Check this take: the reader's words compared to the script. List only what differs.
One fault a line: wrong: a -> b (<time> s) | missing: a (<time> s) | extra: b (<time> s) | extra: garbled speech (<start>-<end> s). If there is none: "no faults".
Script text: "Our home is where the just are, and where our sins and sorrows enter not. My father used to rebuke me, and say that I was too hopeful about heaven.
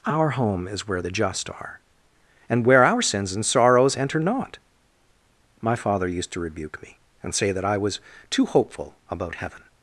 no faults